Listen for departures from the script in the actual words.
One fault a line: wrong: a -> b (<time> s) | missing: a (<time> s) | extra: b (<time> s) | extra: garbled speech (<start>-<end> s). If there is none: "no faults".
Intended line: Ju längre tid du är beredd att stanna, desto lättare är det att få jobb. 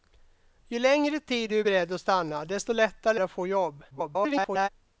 missing: är (3.2 s)
extra: garbled speech (3.9-4.7 s)